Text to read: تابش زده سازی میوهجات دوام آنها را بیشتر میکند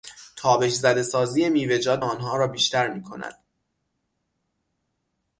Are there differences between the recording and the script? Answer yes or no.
yes